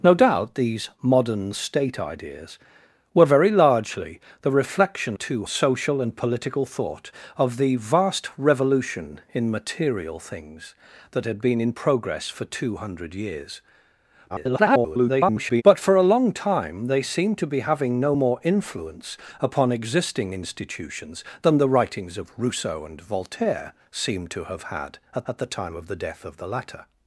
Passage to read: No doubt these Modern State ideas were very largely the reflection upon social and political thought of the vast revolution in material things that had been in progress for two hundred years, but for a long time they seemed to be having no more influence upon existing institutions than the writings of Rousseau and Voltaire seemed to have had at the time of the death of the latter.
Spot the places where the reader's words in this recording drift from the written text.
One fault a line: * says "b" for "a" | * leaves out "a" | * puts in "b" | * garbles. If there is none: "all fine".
* says "two" for "upon"
* garbles
* puts in "at"